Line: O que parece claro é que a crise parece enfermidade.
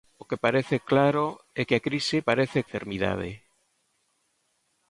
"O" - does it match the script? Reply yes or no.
yes